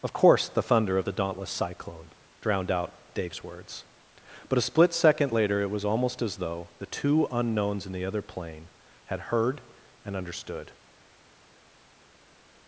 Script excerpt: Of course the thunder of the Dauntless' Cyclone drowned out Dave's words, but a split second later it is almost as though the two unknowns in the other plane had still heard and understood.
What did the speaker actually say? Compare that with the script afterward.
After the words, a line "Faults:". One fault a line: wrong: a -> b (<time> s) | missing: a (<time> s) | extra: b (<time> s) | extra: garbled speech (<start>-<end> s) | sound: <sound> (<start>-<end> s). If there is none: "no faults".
Of course the thunder of the Dauntless' Cyclone drowned out Dave's words, but a split second later it was almost as though the two unknowns in the other plane had heard and understood.
Faults:
wrong: is -> was (5.7 s)
missing: still (9.2 s)